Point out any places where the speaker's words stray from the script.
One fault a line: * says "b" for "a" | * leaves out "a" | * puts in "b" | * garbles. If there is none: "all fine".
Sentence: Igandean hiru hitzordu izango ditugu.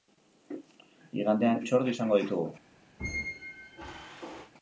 * leaves out "hiru"